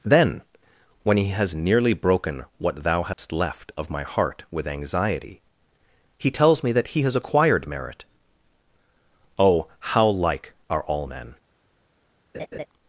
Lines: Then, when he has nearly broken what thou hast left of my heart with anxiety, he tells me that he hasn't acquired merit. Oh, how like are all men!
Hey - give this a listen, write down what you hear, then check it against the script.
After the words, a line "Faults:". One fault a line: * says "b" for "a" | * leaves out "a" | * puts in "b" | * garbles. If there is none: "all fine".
Then, when he has nearly broken what thou hast left of my heart with anxiety, he tells me that he has acquired merit. Oh, how like are all men!
Faults:
* says "has" for "hasn't"